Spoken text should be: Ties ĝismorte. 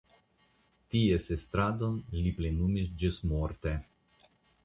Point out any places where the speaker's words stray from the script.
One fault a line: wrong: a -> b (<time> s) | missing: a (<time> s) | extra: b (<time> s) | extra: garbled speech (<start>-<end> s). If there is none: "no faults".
extra: estradon li plenumis (1.4 s)